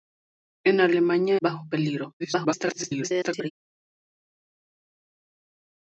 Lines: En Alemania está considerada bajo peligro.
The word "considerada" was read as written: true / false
false